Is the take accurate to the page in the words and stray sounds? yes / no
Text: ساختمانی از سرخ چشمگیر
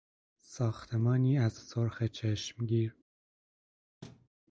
no